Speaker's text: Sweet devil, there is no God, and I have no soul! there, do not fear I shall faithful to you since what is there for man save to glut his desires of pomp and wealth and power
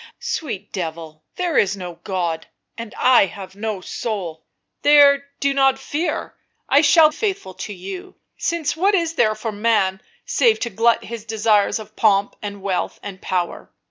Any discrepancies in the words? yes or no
no